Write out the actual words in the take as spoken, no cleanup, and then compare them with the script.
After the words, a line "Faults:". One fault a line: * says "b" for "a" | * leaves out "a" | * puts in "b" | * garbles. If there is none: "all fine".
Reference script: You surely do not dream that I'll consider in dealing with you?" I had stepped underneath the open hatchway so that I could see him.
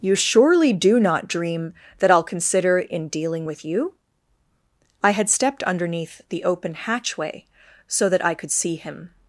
You surely do not dream that I'll consider in dealing with you?" I had stepped underneath the open hatchway so that I could see him.
Faults:
all fine